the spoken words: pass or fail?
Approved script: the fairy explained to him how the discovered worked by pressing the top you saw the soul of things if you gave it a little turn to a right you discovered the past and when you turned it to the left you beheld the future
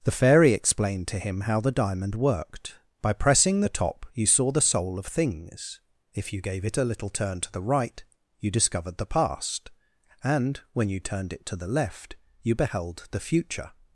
fail